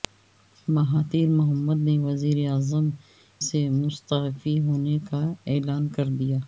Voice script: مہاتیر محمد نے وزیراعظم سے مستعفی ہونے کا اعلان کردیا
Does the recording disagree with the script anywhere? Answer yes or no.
no